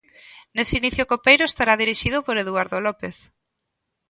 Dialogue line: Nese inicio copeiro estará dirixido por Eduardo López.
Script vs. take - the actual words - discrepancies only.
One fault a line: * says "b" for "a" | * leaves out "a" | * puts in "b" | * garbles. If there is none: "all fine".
all fine